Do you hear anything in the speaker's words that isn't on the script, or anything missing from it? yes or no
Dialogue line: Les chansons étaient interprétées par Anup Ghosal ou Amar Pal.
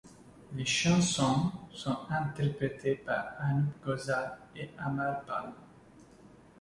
yes